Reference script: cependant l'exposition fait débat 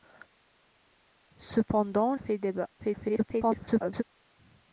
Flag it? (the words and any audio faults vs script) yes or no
yes